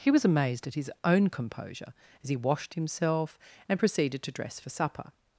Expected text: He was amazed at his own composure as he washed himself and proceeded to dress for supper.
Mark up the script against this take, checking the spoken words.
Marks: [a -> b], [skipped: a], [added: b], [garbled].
He was amazed at his own composure as he washed himself and proceeded to dress for supper.